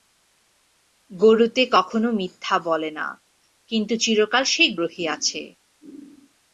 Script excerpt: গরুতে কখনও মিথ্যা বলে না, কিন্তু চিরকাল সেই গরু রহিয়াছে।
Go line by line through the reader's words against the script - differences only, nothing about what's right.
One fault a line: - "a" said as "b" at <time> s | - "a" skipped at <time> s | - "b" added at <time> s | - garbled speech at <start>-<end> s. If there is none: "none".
- "গরু" skipped at 4.7 s